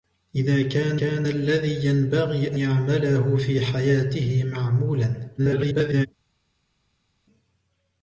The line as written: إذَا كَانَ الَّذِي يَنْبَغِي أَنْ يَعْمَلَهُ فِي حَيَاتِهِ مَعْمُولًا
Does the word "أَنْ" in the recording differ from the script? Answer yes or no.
yes